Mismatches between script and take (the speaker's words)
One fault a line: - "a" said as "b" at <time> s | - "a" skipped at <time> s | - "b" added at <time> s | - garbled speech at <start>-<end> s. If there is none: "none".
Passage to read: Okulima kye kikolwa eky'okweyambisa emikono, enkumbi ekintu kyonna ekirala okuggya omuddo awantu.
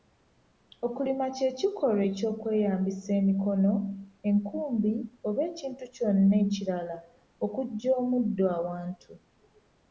- "oba" added at 5.3 s